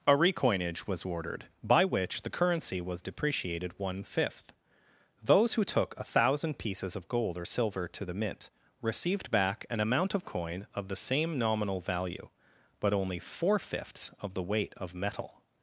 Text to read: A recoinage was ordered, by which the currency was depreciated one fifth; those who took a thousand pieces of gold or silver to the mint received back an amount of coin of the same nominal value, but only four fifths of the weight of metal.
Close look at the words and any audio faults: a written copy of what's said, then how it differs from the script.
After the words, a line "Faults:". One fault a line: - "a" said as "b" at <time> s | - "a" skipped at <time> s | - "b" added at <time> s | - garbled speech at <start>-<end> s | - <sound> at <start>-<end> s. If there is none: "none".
A recoinage was ordered, by which the currency was depreciated one fifth; those who took a thousand pieces of gold or silver to the mint received back an amount of coin of the same nominal value, but only four fifths of the weight of metal.
Faults:
none